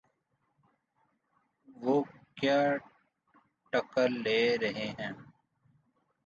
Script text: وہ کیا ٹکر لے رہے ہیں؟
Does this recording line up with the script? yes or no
yes